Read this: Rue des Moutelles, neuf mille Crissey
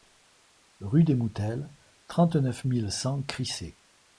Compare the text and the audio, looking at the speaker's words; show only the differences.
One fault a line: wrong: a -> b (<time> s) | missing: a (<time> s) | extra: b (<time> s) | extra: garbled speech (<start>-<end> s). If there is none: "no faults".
extra: trente (2.1 s)
extra: cent (2.9 s)